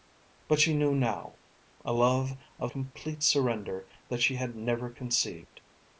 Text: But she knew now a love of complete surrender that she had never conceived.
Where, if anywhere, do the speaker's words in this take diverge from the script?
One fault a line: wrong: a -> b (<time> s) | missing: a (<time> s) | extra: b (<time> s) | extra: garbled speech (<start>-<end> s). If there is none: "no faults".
no faults